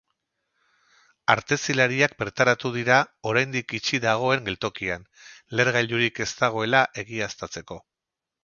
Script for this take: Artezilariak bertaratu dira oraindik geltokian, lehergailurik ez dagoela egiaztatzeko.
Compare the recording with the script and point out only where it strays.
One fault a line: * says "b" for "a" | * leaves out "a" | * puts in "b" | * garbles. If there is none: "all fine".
* puts in "itxi dagoen"